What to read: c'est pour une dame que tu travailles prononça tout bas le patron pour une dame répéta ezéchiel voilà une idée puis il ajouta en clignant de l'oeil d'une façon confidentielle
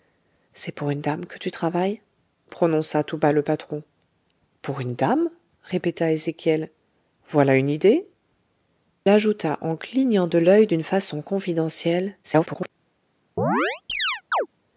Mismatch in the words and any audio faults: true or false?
true